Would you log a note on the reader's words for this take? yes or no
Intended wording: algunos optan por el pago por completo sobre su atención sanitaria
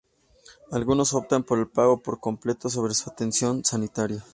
no